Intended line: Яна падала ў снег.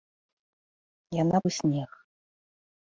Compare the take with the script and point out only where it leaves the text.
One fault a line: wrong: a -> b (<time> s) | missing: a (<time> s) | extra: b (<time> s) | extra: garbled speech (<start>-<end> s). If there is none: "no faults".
missing: падала (1.4 s)